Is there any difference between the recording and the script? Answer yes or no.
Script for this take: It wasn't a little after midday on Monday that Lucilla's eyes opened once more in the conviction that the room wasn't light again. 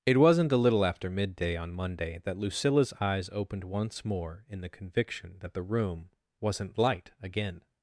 no